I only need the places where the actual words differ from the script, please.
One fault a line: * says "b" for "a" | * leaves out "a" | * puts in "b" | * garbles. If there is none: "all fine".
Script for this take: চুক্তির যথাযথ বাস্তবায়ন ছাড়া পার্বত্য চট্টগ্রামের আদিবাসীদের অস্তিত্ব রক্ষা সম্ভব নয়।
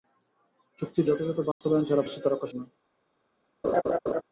* leaves out "পার্বত্য চট্টগ্রামের আদিবাসীদের"
* leaves out "সম্ভব"